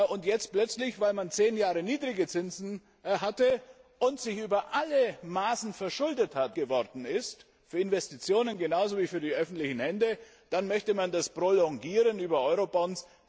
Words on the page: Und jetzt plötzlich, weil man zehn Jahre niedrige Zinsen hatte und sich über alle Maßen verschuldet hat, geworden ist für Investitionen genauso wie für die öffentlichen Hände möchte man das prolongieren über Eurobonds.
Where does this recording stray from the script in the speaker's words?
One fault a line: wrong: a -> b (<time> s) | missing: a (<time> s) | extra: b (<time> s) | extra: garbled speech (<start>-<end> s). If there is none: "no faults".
no faults